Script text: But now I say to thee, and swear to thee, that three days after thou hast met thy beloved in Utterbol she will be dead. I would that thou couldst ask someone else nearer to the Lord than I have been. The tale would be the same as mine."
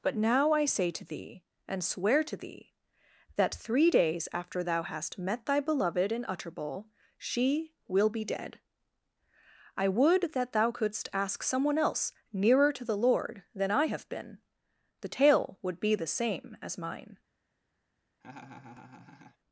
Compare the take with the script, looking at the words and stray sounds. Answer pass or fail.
fail